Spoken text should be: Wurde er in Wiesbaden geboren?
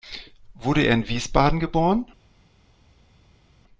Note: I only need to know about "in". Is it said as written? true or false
true